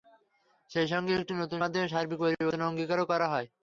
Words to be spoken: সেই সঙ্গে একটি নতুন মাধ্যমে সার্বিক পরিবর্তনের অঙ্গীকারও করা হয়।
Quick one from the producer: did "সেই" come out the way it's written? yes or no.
yes